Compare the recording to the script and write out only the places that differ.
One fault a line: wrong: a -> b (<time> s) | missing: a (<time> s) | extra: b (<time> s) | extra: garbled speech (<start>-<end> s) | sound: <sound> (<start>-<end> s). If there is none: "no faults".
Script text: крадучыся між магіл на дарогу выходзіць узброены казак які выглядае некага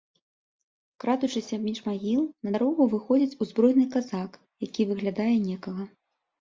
no faults